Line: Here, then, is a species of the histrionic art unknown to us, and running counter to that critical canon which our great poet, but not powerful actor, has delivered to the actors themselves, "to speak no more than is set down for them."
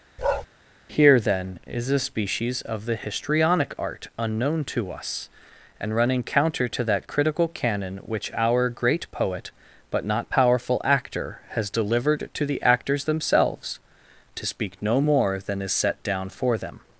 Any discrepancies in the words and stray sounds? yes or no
yes